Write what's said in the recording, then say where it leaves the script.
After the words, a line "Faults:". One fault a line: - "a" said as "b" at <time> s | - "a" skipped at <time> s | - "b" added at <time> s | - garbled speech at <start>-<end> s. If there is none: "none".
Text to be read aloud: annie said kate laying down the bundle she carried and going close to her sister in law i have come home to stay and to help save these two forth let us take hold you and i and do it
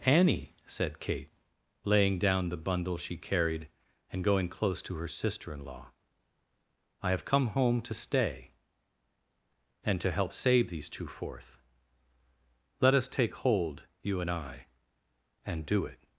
annie said kate laying down the bundle she carried and going close to her sister in law i have come home to stay and to help save these two forth let us take hold you and i and do it
Faults:
none